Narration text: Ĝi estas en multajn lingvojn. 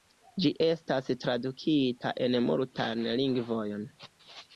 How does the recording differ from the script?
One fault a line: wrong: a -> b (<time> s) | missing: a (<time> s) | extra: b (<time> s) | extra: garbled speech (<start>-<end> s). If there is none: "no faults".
extra: tradukita (1.2 s)